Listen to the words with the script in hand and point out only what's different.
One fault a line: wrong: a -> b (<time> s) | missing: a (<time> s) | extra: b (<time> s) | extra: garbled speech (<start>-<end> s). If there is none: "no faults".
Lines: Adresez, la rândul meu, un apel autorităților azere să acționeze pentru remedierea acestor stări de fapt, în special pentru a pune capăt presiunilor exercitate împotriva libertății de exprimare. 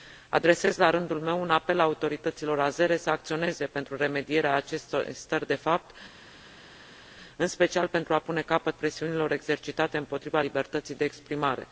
no faults